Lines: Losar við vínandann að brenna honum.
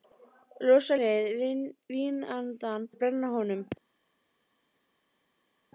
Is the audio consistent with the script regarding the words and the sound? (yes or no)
yes